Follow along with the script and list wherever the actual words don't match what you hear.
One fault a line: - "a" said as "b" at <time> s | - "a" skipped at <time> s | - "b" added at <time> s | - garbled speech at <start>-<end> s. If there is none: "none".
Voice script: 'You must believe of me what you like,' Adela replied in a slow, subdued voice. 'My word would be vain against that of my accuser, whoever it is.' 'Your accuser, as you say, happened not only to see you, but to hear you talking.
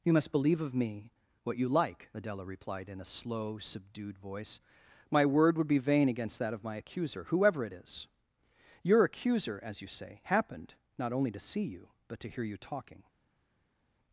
none